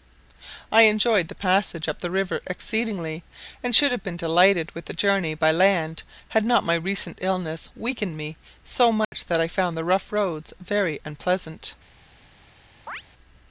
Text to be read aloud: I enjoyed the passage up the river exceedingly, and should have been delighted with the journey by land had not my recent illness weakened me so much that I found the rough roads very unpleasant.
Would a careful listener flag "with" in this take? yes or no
no